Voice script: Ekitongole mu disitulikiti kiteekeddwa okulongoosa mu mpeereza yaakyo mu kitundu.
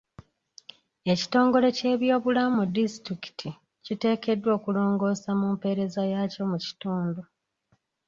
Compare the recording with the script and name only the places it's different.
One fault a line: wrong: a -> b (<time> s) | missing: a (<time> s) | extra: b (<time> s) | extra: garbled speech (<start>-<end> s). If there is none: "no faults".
extra: ky'ebyobulamu (1.8 s)